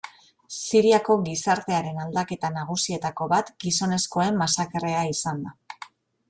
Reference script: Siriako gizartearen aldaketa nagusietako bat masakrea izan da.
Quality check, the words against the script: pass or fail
fail